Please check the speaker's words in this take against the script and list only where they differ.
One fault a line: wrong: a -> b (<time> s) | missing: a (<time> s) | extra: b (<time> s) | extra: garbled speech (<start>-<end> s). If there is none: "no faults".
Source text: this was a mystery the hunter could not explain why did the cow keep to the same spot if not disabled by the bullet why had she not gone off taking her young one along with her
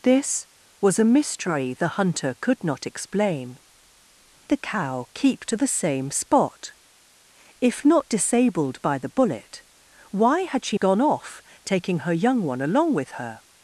missing: why did (3.6 s)
missing: not (10.8 s)